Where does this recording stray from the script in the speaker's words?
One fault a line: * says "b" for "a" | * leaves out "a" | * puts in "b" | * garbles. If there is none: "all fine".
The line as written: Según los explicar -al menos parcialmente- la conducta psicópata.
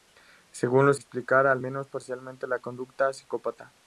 all fine